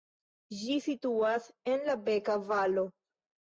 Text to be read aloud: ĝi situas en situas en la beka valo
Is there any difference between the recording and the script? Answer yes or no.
yes